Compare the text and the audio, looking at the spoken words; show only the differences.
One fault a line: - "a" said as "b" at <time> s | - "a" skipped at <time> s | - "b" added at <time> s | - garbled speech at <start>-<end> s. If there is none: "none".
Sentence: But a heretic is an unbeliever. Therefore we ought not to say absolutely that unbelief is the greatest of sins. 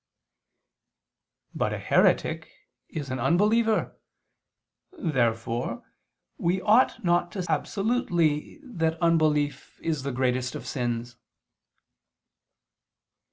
- "say" skipped at 7.4 s